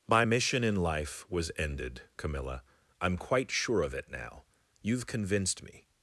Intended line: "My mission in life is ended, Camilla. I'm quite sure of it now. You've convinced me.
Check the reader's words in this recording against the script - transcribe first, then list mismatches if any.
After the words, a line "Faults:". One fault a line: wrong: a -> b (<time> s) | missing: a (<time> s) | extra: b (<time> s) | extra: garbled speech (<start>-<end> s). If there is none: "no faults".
"My mission in life was ended, Camilla. I'm quite sure of it now. You've convinced me.
Faults:
wrong: is -> was (1.3 s)